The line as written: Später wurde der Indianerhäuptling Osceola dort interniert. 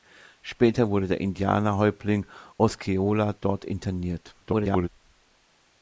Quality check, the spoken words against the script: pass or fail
fail